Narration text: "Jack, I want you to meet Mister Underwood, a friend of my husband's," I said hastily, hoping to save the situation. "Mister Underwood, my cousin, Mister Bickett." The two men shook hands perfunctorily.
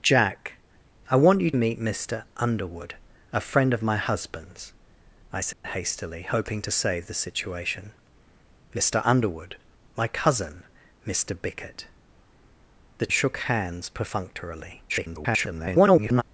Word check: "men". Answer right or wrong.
wrong